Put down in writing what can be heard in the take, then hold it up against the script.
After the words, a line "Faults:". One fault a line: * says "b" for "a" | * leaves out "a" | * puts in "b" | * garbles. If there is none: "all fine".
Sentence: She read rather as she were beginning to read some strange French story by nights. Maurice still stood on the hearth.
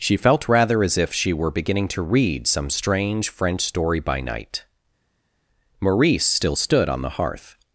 She felt rather as if she were beginning to read some strange French story by night. Maurice still stood on the hearth.
Faults:
* says "felt" for "read"
* puts in "if"
* says "night" for "nights"